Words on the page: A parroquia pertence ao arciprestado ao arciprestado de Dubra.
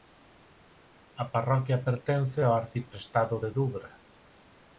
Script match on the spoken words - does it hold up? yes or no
no